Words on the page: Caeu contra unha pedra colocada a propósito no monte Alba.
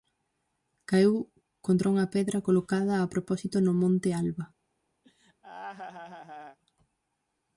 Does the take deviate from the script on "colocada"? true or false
false